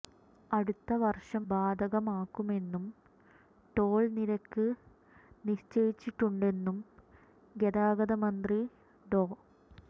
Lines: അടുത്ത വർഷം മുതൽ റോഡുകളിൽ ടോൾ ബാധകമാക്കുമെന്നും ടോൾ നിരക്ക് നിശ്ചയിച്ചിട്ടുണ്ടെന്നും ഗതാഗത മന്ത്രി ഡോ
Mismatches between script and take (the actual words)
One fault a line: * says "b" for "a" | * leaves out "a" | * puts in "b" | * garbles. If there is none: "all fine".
* leaves out "മുതൽ റോഡുകളിൽ ടോൾ"